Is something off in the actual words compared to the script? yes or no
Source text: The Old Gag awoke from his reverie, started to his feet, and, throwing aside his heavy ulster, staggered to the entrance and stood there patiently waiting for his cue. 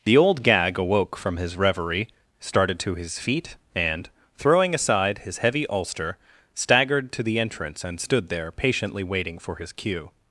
no